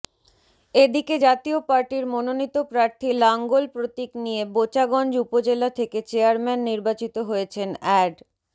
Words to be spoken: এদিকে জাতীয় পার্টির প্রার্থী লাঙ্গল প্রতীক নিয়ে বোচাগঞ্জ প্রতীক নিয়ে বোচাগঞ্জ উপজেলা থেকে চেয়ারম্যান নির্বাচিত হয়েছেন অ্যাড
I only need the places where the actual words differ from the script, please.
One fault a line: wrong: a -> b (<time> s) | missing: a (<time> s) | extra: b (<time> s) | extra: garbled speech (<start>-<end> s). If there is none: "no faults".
extra: মনোনীত (2.1 s)
missing: প্রতীক নিয়ে বোচাগঞ্জ (5.1 s)